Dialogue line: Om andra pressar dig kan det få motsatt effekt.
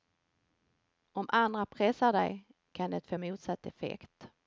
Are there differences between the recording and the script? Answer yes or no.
no